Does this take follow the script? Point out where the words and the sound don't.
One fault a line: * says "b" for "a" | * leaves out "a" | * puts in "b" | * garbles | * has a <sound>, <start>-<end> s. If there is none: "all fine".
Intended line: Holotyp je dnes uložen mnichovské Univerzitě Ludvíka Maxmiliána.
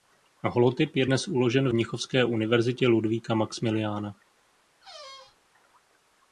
* has a squeak, 4.8-5.4 s